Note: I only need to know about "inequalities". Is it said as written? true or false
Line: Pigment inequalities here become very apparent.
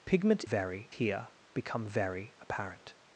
false